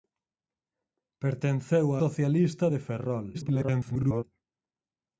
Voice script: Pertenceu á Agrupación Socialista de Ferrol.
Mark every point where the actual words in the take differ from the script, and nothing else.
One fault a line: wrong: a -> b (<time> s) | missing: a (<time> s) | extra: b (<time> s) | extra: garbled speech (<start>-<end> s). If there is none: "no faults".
missing: Agrupación (2.0 s)
extra: garbled speech (3.3-4.2 s)